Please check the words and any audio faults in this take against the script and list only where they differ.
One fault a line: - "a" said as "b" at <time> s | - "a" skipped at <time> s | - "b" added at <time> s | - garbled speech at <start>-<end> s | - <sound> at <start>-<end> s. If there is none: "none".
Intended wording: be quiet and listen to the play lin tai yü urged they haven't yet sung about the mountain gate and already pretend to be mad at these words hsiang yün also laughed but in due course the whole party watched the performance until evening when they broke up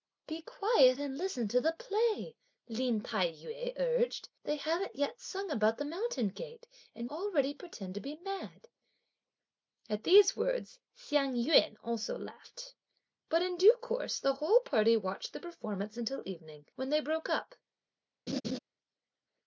- laugh at 18.3-18.6 s